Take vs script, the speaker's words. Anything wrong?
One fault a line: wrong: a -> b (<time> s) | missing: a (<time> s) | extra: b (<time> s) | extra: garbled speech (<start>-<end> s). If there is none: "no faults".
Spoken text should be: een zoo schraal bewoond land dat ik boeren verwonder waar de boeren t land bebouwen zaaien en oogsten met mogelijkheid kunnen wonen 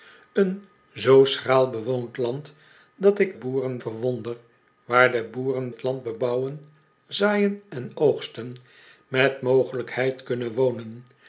no faults